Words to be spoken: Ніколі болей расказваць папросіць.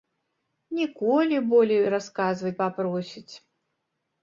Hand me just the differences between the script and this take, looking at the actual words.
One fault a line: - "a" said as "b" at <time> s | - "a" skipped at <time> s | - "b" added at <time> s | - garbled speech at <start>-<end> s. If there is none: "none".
none